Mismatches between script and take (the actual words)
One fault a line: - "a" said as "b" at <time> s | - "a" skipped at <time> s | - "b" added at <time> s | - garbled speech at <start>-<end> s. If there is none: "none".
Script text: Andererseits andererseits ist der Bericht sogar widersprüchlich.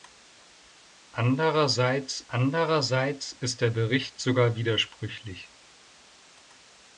none